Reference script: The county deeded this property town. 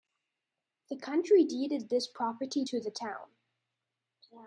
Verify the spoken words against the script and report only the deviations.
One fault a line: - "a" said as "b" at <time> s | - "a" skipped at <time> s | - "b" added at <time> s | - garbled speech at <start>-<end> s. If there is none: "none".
- "to the" added at 2.6 s